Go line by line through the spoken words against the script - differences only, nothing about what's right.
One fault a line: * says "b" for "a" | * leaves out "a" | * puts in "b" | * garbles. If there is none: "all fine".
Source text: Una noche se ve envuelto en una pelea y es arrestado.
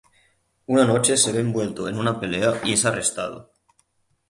all fine